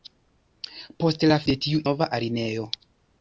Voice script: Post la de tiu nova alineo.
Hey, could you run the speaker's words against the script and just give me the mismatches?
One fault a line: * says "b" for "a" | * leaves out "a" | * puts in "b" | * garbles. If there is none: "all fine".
all fine